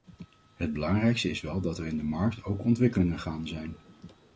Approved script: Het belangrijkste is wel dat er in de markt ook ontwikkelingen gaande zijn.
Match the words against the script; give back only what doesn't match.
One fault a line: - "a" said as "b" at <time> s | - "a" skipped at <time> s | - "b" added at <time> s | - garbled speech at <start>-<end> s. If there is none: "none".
none